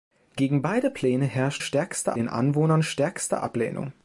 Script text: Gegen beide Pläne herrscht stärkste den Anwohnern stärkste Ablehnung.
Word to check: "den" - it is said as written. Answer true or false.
true